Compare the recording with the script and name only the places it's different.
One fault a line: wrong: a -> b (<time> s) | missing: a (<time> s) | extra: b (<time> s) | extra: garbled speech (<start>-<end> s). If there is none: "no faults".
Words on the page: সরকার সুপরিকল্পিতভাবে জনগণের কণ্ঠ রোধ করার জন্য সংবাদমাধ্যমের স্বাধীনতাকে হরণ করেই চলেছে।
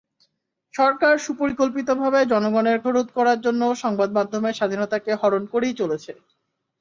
missing: কণ্ঠ (2.8 s)